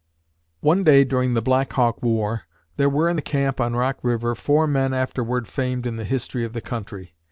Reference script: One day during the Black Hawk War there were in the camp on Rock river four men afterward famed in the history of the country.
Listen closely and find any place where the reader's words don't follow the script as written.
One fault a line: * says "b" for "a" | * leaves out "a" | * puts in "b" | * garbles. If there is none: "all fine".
all fine